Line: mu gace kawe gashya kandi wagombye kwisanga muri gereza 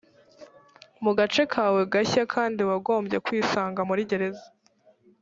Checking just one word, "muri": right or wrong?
right